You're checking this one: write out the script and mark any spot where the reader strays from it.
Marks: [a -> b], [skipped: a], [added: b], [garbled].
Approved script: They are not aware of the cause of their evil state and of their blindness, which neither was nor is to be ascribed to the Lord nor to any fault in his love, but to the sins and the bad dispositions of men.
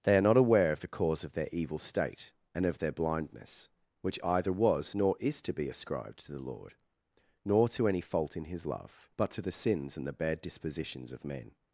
They are not aware of the cause of their evil state and of their blindness, which [neither -> either] was nor is to be ascribed to the Lord nor to any fault in his love, but to the sins and the bad dispositions of men.